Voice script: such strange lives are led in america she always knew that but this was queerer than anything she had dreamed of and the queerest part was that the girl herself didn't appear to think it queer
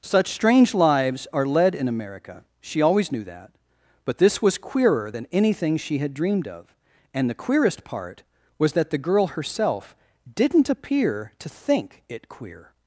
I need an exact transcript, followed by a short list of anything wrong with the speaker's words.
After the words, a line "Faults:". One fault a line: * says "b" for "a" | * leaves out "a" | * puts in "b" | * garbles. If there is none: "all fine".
such strange lives are led in america she always knew that but this was queerer than anything she had dreamed of and the queerest part was that the girl herself didn't appear to think it queer
Faults:
all fine